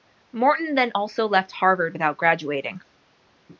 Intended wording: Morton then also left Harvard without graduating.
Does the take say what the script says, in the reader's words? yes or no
yes